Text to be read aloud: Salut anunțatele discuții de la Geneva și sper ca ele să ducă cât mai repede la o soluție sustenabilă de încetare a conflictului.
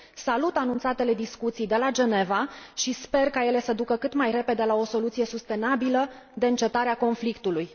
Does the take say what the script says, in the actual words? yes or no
yes